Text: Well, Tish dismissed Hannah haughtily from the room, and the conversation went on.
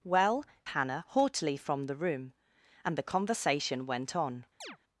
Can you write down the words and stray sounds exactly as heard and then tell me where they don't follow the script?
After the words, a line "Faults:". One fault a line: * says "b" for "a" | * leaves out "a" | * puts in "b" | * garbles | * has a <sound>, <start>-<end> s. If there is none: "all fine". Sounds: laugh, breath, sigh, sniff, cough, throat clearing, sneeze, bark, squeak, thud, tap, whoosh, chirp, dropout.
Well, Hannah haughtily from the room, and the conversation went on.
Faults:
* leaves out "Tish dismissed"
* has a chirp, 4.6-4.8 s